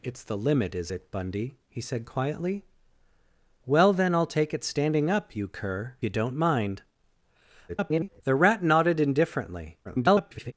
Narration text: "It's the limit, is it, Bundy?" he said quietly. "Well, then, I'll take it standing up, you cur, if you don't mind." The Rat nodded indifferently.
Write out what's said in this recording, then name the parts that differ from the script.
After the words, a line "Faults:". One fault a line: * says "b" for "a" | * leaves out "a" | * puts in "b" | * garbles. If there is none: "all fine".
"It's the limit, is it, Bundy?" he said quietly. "Well, then, I'll take it standing up, you cur, you don't mind." [garbled] The Rat nodded indifferently. [garbled]
Faults:
* leaves out "if"
* garbles
* garbles